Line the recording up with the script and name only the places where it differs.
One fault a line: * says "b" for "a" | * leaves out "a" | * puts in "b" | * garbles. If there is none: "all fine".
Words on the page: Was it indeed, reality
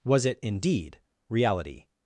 all fine